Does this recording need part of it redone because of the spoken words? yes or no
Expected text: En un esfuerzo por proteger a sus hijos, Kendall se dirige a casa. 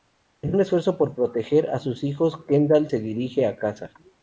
no